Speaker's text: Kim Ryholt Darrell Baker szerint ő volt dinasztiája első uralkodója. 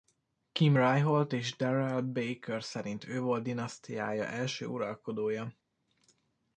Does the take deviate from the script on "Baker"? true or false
false